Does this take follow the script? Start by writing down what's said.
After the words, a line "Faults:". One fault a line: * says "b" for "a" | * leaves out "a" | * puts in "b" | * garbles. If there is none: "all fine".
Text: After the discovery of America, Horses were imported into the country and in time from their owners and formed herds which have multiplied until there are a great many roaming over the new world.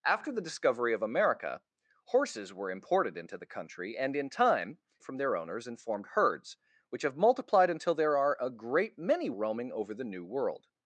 After the discovery of America, Horses were imported into the country and in time from their owners and formed herds which have multiplied until there are a great many roaming over the new world.
Faults:
all fine